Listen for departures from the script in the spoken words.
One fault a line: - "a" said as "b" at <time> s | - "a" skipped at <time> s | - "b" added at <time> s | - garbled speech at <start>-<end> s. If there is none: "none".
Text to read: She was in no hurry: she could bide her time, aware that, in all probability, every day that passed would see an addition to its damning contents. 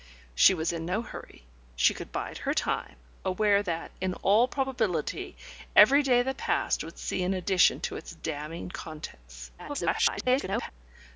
- garbled speech at 9.6-10.7 s